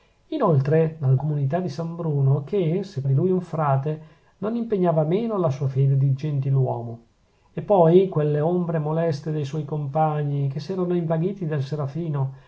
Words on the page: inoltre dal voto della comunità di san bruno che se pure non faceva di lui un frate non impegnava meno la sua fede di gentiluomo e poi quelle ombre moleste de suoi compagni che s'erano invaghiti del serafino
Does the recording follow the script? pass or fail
fail